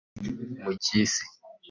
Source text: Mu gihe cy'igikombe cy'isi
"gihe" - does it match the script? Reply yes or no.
no